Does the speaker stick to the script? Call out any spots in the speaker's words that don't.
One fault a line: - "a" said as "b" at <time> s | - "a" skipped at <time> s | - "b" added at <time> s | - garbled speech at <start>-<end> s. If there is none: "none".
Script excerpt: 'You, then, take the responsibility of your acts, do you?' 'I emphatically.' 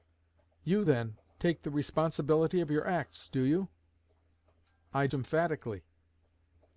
none